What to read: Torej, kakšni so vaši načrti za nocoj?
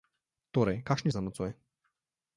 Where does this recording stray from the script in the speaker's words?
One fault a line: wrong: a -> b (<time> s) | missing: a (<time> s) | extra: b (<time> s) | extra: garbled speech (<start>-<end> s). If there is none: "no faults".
missing: so vaši načrti (1.1 s)